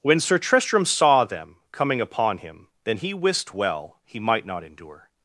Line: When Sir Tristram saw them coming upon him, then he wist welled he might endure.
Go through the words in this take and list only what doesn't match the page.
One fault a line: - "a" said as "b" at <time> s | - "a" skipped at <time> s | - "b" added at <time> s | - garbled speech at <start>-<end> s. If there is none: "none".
- "welled" said as "well" at 3.5 s
- "not" added at 4.4 s